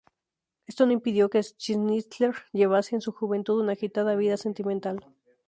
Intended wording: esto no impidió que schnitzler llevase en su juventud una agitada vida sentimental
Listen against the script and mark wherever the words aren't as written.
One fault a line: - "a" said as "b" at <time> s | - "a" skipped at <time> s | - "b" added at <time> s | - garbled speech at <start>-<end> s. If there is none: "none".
none